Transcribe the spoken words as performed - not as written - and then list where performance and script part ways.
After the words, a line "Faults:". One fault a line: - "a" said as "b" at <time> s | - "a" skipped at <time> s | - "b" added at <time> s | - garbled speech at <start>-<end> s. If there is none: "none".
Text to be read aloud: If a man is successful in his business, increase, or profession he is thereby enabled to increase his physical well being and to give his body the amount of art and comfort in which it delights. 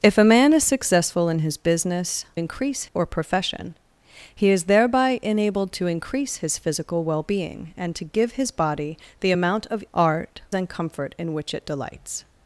If a man is successful in his business, increase, or profession he is thereby enabled to increase his physical well being and to give his body the amount of art and comfort in which it delights.
Faults:
none